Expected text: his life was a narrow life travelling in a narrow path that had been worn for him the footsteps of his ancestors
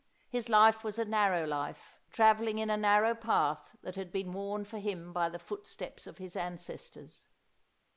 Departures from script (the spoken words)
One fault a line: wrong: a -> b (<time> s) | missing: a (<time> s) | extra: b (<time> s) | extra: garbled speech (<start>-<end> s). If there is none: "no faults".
extra: by (5.1 s)